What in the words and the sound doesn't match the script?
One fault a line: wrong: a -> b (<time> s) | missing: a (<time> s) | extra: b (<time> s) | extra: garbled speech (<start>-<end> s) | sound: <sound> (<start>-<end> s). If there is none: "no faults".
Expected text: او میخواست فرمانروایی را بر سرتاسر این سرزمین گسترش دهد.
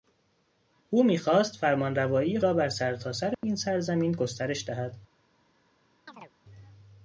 sound: dropout (3.3-3.4 s)
sound: chirp (6.1-6.3 s)